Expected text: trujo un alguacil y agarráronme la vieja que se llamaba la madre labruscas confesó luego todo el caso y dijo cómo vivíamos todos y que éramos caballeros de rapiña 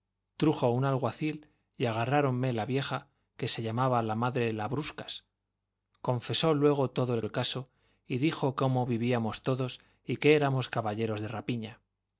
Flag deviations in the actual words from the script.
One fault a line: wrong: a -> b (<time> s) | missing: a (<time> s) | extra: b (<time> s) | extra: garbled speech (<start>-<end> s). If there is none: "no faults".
extra: el (7.2 s)